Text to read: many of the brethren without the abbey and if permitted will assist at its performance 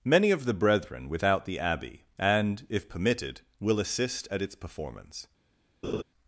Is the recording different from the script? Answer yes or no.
no